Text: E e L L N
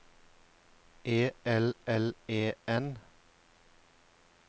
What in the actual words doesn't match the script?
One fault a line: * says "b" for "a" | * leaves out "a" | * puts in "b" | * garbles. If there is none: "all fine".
* says "L" for "e"
* says "E" for "L"